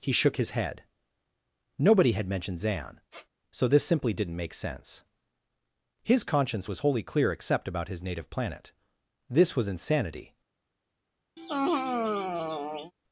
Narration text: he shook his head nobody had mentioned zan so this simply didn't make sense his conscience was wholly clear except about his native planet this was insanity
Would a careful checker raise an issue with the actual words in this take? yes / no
no